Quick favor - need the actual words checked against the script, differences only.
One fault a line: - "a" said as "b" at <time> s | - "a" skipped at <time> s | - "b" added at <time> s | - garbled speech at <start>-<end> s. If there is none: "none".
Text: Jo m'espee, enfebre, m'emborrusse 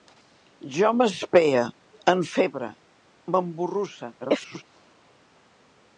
- garbled speech at 4.2-4.6 s